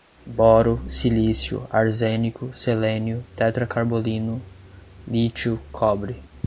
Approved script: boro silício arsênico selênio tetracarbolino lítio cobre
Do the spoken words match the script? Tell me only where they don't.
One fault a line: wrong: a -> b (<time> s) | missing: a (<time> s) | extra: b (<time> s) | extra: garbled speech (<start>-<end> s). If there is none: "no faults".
no faults